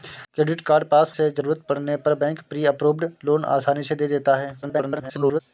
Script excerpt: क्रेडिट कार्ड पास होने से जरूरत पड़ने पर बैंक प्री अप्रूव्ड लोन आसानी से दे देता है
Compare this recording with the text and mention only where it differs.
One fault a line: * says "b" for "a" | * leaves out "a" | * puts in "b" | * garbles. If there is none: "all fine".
* leaves out "होने"
* garbles